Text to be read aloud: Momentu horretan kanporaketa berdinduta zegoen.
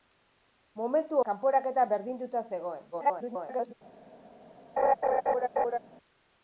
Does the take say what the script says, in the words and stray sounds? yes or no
no